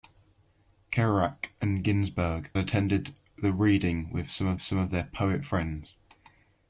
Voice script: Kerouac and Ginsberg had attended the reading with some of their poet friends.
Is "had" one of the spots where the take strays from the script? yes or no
yes